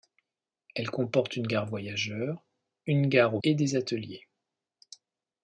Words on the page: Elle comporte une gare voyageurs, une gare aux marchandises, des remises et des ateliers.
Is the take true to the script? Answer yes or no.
no